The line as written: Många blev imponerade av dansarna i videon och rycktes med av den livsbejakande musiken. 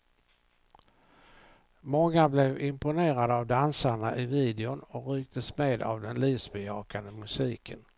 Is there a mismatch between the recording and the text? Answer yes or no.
no